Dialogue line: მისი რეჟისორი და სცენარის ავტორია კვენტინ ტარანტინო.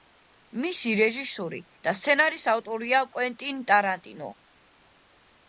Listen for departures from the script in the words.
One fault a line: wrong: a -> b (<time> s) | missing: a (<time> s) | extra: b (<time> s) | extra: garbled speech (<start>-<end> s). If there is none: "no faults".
no faults